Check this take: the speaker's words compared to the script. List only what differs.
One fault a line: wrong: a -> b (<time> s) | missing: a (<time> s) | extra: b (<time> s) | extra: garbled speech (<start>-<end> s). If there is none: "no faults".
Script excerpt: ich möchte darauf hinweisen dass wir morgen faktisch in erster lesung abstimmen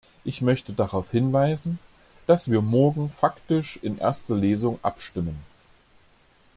no faults